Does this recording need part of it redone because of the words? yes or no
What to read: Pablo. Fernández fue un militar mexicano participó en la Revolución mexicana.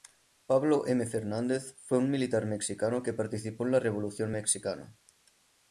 yes